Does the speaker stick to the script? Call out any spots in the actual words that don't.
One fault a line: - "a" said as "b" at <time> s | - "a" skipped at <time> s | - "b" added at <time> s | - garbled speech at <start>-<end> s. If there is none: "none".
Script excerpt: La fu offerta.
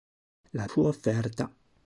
none